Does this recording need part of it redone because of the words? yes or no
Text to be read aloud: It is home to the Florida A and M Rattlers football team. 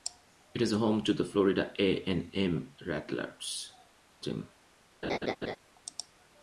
yes